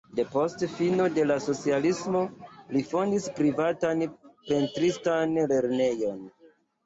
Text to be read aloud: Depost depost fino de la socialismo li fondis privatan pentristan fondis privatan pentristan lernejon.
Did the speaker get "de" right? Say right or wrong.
right